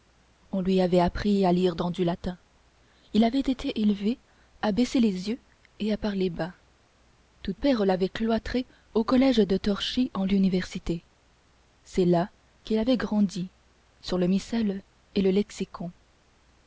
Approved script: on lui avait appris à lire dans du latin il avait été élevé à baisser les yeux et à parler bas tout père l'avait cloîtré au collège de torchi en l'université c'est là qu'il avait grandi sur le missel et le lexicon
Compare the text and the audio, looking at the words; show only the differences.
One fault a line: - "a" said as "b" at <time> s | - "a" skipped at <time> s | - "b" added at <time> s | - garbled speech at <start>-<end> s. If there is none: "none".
none